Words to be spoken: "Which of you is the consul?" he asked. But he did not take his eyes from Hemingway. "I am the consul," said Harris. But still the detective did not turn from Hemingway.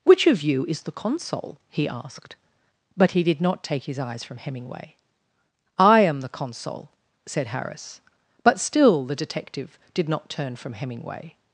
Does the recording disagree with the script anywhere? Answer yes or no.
no